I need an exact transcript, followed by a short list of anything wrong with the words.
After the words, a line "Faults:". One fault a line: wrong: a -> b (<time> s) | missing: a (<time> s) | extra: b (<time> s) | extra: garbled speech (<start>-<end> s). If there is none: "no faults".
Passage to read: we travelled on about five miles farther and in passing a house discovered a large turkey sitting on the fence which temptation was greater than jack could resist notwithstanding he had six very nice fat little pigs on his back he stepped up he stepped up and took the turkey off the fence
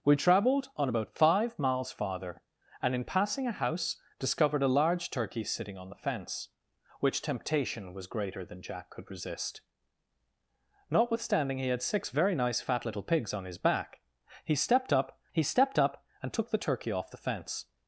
we travelled on about five miles farther and in passing a house discovered a large turkey sitting on the fence which temptation was greater than jack could resist notwithstanding he had six very nice fat little pigs on his back he stepped up he stepped up and took the turkey off the fence
Faults:
no faults